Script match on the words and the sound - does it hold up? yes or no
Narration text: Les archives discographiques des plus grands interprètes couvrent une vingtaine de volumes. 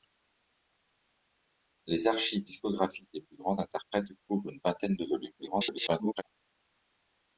no